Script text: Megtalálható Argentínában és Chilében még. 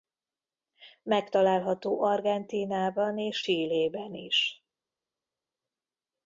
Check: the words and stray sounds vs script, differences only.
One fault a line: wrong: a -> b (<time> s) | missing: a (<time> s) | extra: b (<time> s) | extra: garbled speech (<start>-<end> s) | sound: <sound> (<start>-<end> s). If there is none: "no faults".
wrong: még -> is (4.1 s)